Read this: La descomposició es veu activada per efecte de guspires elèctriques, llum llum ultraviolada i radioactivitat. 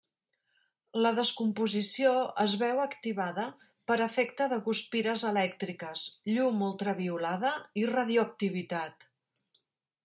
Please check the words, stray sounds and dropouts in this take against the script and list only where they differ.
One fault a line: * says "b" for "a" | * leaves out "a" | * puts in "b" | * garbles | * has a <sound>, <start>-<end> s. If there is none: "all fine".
* leaves out "llum"